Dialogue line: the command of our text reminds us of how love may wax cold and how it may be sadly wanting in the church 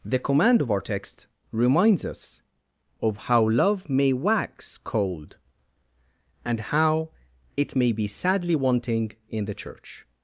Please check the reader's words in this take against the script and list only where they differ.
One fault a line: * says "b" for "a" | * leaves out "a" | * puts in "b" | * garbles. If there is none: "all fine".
all fine